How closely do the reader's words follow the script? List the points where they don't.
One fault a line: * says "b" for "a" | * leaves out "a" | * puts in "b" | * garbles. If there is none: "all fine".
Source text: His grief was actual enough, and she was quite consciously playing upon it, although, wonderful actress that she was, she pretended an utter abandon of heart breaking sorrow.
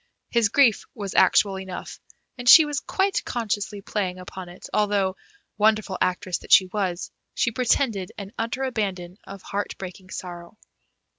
all fine